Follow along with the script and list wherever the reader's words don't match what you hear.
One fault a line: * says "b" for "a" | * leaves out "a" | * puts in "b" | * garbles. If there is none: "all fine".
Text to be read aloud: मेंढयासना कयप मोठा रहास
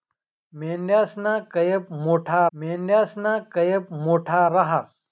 * puts in "मेंढयासना कयप मोठा"